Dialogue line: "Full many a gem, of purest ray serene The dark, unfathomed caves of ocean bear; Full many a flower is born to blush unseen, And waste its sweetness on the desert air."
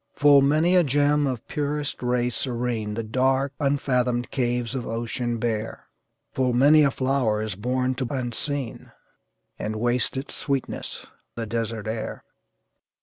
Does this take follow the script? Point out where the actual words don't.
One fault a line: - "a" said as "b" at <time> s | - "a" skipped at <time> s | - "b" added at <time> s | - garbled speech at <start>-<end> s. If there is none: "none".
- "blush" skipped at 8.1 s
- "on" skipped at 11.1 s